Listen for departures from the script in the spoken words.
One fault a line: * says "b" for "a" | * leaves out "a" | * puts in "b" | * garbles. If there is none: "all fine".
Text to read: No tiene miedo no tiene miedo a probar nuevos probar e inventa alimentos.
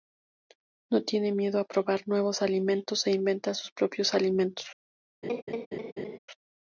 * leaves out "no tiene miedo"
* says "alimentos" for "probar"
* puts in "sus propios"